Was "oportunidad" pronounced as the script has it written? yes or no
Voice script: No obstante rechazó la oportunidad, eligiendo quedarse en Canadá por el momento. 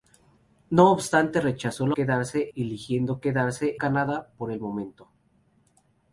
no